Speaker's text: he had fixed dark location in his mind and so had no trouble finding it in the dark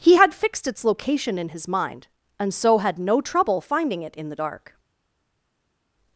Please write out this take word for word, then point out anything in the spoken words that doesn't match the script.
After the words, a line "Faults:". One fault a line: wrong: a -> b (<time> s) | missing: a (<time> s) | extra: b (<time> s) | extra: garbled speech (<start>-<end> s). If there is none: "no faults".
he had fixed its location in his mind and so had no trouble finding it in the dark
Faults:
wrong: dark -> its (0.7 s)